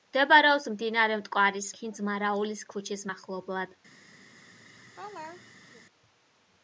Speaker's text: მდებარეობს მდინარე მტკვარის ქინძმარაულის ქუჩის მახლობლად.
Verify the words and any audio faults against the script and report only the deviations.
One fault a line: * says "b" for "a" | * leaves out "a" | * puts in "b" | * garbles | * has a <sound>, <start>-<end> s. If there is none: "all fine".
* has a laugh, 4.3-5.8 s